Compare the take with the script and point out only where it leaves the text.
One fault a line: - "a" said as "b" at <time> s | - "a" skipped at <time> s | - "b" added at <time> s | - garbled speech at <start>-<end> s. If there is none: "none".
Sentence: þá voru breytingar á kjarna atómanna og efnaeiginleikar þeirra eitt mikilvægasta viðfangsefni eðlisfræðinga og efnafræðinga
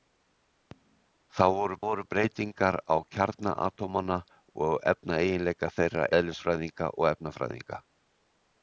- "voru" added at 1.9 s
- "eitt mikilvægasta viðfangsefni" skipped at 6.1 s